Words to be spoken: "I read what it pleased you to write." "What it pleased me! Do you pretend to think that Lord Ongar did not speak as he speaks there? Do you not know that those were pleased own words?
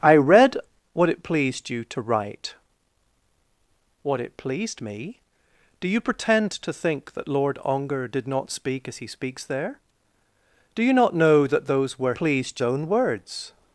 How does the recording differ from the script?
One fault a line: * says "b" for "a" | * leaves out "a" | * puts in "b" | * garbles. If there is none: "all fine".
all fine